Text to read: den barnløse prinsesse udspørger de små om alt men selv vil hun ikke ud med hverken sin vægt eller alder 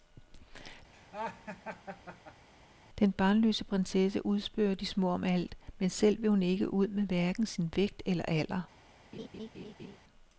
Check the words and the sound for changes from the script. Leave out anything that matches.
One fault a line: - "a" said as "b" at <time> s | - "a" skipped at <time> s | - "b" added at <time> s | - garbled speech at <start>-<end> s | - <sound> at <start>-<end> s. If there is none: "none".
- laugh at 0.9-2.5 s
- laugh at 9.1-10.0 s